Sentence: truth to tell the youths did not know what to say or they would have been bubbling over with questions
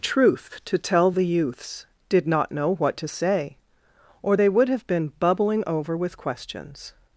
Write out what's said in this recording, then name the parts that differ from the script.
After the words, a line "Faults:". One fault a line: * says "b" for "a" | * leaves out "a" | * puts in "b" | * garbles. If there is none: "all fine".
truth to tell the youths did not know what to say or they would have been bubbling over with questions
Faults:
all fine